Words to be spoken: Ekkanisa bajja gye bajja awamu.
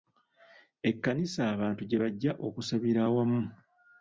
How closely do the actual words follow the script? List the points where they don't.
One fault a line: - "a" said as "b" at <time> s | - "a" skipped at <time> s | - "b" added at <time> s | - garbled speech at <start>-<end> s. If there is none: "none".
- "bajja" said as "abantu" at 1.5 s
- "okusabira" added at 2.5 s